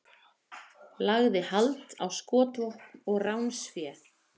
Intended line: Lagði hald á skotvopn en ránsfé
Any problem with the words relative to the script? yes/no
yes